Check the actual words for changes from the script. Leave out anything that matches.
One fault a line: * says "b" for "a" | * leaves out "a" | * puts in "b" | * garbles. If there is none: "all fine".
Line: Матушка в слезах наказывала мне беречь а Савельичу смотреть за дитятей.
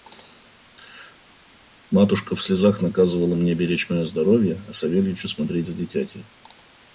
* puts in "мое здоровье"